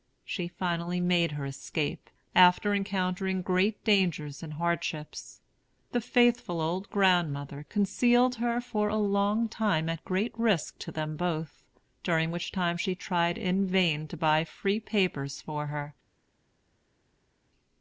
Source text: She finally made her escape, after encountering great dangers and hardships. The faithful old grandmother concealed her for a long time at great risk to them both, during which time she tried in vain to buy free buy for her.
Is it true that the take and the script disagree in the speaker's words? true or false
true